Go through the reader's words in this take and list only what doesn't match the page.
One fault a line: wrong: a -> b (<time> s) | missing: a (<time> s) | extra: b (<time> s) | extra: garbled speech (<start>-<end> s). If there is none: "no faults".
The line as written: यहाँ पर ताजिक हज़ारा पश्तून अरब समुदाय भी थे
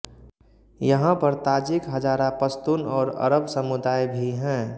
extra: और (2.9 s)
wrong: थे -> हैं (4.3 s)